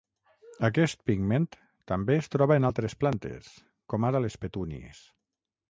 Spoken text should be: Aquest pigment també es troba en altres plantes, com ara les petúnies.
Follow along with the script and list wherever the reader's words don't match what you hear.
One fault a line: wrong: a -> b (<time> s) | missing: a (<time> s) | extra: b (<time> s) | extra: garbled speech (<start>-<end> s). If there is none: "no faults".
no faults